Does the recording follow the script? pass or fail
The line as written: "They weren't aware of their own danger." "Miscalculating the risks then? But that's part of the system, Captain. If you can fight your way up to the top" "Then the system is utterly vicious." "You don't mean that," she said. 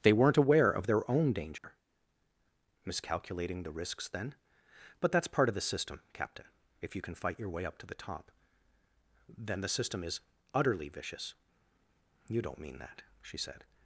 pass